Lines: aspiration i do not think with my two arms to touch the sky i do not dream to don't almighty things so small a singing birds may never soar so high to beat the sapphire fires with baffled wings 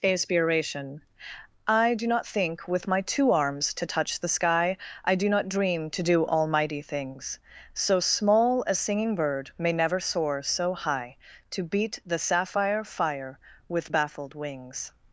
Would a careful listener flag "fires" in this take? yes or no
yes